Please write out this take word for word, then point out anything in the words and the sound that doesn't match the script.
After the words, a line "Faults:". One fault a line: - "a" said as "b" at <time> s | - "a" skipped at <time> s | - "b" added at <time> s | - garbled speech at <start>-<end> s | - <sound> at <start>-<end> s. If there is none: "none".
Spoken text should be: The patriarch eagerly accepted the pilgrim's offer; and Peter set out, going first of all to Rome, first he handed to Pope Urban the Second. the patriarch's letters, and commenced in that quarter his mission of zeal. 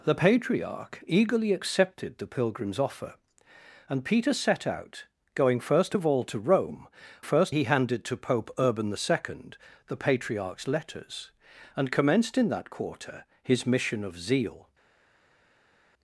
The patriarch eagerly accepted the pilgrim's offer; and Peter set out, going first of all to Rome, first he handed to Pope Urban the Second. the patriarch's letters, and commenced in that quarter his mission of zeal.
Faults:
none